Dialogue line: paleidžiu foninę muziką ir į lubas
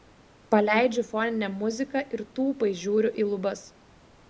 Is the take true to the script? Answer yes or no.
no